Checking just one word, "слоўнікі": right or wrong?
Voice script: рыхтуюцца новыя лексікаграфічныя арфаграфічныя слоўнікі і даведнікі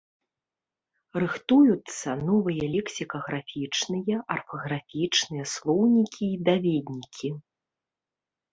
right